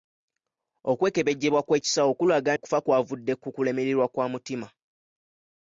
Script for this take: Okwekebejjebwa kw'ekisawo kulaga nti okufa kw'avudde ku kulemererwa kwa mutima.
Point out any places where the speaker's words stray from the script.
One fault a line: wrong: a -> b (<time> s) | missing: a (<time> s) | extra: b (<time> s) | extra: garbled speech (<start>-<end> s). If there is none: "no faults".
missing: nti (2.5 s)